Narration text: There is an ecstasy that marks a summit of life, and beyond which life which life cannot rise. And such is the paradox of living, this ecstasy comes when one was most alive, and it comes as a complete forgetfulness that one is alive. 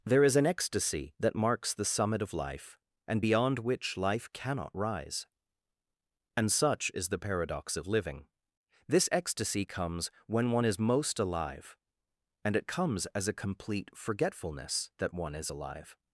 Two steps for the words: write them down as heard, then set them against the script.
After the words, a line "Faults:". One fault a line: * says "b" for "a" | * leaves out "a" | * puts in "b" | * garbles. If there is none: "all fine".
There is an ecstasy that marks the summit of life, and beyond which life cannot rise. And such is the paradox of living, this ecstasy comes when one is most alive, and it comes as a complete forgetfulness that one is alive.
Faults:
* says "the" for "a"
* leaves out "which life"
* says "is" for "was"